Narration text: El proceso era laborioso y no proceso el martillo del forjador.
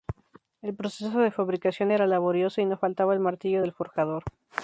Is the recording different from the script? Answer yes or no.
yes